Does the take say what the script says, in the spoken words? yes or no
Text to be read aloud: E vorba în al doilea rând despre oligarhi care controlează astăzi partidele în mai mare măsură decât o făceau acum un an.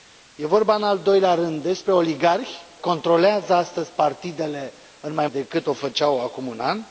no